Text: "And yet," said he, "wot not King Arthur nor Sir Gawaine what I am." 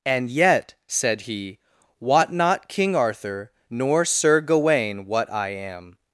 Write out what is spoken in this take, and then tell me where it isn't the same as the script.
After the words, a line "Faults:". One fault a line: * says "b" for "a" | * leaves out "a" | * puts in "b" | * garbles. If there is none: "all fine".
"And yet," said he, "wot not King Arthur nor Sir Gawaine what I am."
Faults:
all fine